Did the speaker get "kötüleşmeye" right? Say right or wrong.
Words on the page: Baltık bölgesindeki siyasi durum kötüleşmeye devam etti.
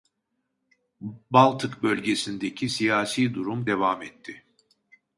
wrong